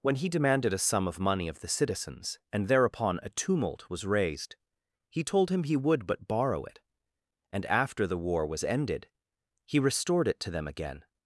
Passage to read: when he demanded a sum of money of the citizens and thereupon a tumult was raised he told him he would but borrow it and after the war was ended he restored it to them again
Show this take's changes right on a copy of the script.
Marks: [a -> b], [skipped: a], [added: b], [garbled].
when he demanded a sum of money of the citizens and thereupon a tumult was raised he told him he would but borrow it and after the war was ended he restored it to them again